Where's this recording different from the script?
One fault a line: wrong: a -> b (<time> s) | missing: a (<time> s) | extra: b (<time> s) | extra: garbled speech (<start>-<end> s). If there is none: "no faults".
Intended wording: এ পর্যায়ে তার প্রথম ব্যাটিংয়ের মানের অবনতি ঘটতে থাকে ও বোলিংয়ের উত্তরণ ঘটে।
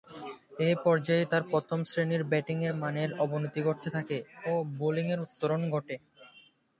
extra: শ্রেণীর (1.8 s)